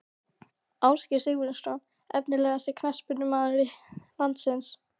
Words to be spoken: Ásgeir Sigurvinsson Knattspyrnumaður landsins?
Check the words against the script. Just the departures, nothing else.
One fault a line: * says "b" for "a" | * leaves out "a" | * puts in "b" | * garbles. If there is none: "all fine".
* puts in "Efnilegasti"